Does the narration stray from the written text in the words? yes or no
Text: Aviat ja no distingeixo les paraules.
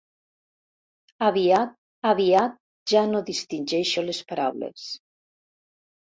yes